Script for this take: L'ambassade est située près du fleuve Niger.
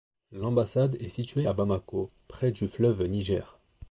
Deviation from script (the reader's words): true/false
true